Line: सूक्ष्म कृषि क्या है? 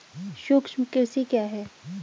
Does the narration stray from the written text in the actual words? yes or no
no